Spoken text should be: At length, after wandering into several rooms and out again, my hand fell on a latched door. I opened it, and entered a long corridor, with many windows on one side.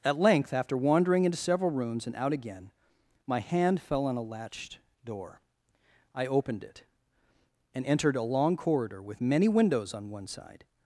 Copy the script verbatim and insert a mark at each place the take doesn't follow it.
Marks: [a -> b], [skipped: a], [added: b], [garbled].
At length, after wandering into several rooms and out again, my hand fell on a latched door. I opened it, and entered a long corridor, with many windows on one side.